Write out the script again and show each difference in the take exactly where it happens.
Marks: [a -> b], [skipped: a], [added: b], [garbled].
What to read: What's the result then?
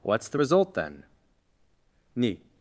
What's the result then? [added: ni]